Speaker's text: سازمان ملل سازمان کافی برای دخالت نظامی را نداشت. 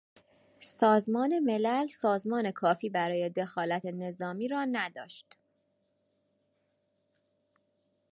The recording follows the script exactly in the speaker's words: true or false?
true